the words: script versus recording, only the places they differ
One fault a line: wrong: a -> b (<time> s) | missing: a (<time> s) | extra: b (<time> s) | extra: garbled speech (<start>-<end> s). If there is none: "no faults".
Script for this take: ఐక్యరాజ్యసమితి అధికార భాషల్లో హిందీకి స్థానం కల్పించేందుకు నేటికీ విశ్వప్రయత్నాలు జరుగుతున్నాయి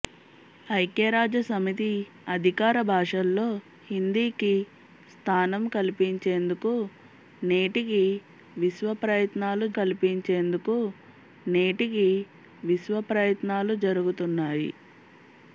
extra: కల్పించేందుకు నేటికీ విశ్వప్రయత్నాలు (9.8 s)